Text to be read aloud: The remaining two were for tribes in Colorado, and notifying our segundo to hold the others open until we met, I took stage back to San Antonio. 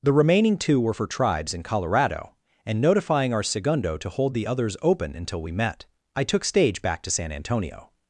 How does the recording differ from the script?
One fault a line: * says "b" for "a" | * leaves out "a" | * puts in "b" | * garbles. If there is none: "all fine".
all fine